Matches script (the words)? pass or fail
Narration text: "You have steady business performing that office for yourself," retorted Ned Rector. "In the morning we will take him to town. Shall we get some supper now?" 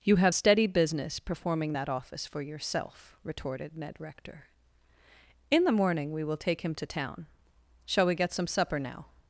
pass